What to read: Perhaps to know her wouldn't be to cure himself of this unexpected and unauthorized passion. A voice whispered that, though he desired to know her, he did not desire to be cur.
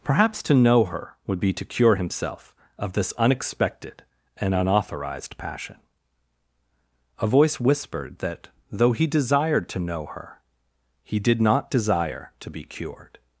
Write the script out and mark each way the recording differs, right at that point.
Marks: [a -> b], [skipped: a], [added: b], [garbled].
Perhaps to know her [wouldn't -> would] be to cure himself of this unexpected and unauthorized passion. A voice whispered that, though he desired to know her, he did not desire to be [cur. -> cured]